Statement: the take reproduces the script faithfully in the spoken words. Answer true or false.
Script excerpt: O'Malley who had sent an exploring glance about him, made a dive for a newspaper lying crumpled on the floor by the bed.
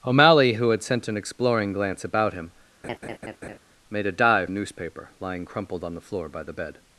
false